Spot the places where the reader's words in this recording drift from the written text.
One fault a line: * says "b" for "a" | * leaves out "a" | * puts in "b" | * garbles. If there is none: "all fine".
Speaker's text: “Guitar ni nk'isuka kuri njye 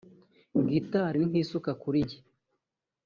all fine